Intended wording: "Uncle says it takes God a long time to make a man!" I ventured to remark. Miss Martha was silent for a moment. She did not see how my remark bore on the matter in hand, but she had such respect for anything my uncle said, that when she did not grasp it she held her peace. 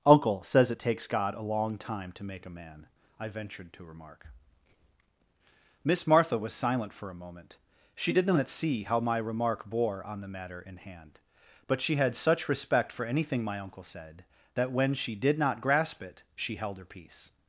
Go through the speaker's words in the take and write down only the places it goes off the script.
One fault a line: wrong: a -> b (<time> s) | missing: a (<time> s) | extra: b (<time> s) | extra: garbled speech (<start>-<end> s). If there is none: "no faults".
no faults